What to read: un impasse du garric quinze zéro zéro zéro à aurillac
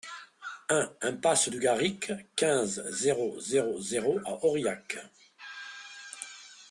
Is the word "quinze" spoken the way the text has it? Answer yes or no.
yes